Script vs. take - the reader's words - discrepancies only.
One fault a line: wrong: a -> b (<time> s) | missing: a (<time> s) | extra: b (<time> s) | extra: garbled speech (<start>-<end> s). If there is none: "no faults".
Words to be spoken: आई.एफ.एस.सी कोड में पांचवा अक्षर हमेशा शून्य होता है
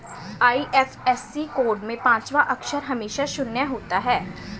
no faults